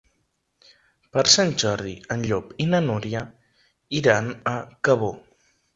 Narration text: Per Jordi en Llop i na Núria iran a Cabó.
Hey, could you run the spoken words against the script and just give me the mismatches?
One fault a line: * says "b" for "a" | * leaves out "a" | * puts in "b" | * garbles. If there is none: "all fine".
* puts in "Sant"